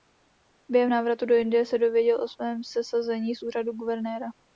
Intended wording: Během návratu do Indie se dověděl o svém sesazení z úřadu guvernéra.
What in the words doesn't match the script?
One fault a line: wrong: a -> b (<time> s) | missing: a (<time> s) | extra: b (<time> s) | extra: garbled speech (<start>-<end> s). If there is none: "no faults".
no faults